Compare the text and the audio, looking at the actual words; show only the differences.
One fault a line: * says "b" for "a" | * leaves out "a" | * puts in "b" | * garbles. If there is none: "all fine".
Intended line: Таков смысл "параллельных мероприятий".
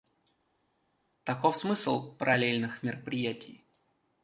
all fine